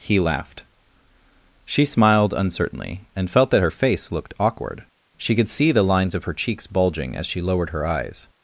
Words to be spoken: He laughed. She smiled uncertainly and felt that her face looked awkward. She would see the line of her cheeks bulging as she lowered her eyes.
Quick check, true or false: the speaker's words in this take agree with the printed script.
false